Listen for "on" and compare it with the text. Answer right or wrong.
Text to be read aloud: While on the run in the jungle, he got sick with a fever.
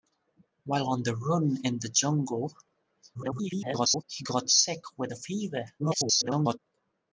right